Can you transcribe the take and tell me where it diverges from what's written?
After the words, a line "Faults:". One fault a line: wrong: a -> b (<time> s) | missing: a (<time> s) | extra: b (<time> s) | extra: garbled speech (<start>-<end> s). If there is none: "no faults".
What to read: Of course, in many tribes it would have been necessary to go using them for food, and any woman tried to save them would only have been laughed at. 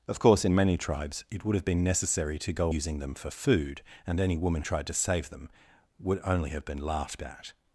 Of course, in many tribes it would have been necessary to go using them for food, and any woman tried to save them would only have been laughed at.
Faults:
no faults